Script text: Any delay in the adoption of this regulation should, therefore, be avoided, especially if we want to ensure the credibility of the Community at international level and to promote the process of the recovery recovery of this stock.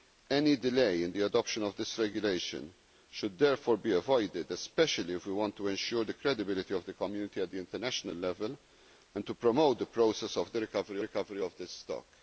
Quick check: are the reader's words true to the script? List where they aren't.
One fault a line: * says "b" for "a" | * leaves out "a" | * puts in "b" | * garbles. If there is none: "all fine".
all fine